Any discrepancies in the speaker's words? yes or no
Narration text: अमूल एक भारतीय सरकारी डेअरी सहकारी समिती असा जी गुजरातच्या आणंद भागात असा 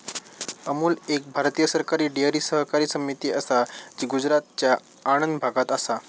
no